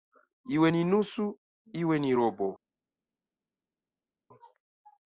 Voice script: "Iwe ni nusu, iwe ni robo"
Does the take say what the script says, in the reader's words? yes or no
yes